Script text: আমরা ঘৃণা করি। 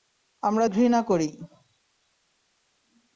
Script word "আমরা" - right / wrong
right